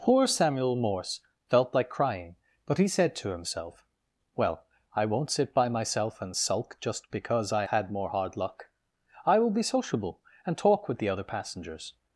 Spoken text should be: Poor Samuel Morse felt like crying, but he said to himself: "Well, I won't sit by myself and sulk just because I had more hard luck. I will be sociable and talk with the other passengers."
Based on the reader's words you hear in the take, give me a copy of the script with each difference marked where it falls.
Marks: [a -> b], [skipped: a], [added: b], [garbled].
Poor Samuel Morse felt like crying, but he said to himself: "Well, I won't sit by myself and sulk just because I had more hard luck. I will be sociable and talk with the other passengers."